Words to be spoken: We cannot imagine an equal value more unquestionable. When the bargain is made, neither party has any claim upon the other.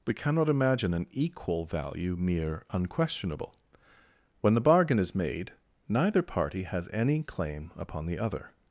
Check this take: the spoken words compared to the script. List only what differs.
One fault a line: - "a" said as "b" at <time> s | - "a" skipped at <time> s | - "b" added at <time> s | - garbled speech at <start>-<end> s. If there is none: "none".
- "more" said as "mere" at 2.1 s